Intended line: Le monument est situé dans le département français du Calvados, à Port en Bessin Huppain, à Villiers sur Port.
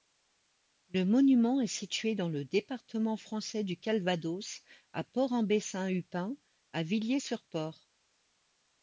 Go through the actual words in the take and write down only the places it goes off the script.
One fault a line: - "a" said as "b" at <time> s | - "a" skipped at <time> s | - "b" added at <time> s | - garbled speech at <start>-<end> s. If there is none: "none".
none